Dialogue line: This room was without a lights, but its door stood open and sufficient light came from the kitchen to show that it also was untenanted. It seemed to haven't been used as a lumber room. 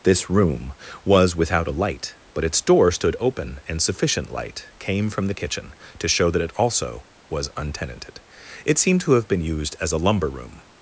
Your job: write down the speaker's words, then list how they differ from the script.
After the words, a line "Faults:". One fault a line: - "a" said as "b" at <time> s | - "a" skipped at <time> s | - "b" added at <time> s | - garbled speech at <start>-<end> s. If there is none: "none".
This room was without a light, but its door stood open and sufficient light came from the kitchen to show that it also was untenanted. It seemed to have been used as a lumber room.
Faults:
- "lights" said as "light" at 1.7 s
- "haven't" said as "have" at 9.1 s